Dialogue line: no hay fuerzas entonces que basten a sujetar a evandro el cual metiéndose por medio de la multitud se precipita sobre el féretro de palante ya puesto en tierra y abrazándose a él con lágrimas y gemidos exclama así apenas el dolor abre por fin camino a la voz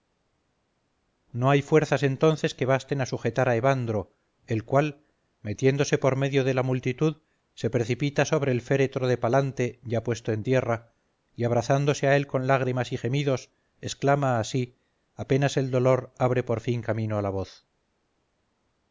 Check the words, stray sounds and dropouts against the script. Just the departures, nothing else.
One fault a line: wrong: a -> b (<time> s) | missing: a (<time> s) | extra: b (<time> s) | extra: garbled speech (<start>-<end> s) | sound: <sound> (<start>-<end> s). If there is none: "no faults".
no faults